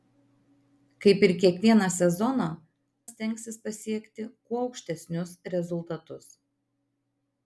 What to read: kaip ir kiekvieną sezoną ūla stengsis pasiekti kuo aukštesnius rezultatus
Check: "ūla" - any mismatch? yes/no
yes